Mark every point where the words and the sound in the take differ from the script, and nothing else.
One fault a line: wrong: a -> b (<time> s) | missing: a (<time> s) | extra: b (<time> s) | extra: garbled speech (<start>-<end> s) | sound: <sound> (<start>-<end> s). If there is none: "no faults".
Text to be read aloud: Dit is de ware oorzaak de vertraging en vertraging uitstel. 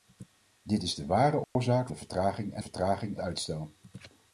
sound: dropout (1.4-1.6 s)